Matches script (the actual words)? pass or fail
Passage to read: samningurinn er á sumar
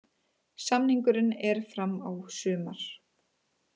fail